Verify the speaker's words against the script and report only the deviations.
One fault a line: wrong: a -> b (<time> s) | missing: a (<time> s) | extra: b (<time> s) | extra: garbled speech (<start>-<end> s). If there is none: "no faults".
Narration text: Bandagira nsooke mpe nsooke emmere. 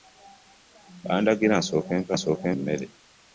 no faults